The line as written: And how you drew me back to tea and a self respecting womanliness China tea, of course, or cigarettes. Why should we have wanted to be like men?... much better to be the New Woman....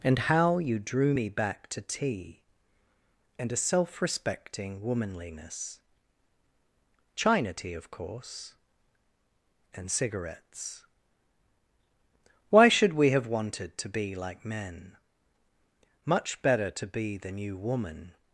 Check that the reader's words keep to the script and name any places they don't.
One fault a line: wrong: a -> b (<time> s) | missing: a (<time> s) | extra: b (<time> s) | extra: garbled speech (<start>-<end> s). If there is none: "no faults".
wrong: or -> and (9.7 s)